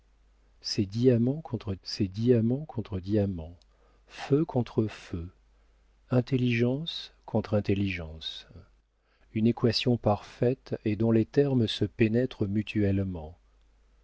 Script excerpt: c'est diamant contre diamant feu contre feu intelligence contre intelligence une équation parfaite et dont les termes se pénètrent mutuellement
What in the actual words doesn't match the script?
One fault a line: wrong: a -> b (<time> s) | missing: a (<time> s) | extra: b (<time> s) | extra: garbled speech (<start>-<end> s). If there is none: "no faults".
extra: c'est diamant contre (1.8 s)